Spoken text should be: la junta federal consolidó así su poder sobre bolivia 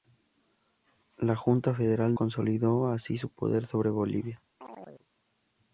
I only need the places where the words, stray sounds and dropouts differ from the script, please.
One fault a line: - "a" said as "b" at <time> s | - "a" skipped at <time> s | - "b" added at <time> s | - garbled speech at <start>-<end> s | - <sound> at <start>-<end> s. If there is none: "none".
- chirp at 4.6-5.1 s